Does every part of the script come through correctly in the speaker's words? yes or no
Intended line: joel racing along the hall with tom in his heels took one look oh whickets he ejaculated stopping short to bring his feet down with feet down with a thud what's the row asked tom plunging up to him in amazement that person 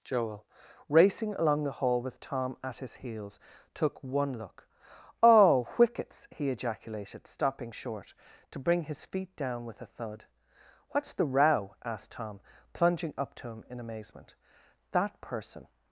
no